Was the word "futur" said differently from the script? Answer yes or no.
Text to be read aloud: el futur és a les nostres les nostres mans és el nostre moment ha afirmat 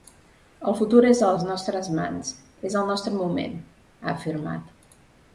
no